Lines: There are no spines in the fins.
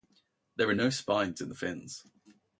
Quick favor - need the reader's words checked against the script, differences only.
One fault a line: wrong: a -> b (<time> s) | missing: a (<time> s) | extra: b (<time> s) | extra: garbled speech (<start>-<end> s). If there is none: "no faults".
no faults